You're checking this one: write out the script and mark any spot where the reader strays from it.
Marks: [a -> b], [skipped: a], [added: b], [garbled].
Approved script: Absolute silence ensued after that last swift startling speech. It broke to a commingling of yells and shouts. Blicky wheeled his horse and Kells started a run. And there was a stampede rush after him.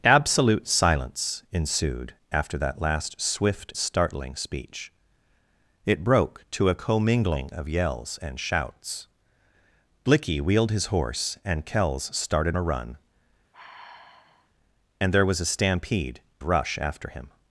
Absolute silence ensued after that last swift startling speech. It broke to a commingling of yells and shouts. Blicky wheeled his horse and Kells started a run. And there was a stampede rush after him.